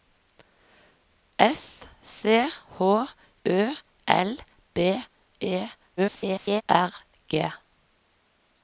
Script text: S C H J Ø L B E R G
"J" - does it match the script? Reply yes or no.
no